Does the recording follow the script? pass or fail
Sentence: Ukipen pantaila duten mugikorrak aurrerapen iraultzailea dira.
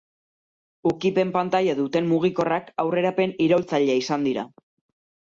fail